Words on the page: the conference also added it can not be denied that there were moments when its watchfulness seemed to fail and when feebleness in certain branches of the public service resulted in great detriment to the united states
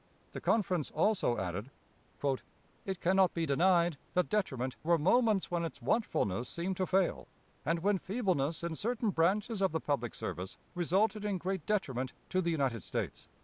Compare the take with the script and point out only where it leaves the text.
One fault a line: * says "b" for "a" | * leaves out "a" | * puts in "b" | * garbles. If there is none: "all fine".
* says "detriment" for "there"